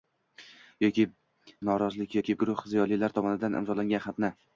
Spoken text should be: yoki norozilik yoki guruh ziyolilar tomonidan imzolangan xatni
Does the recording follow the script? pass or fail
pass